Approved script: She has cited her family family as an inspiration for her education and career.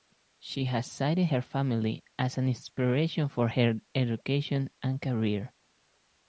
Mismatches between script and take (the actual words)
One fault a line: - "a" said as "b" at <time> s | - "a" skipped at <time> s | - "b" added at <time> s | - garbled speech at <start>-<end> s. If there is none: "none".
- "family" skipped at 2.0 s